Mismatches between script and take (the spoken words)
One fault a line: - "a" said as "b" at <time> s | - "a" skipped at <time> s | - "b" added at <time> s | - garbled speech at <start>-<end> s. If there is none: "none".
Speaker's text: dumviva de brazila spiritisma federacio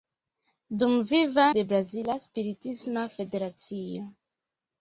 none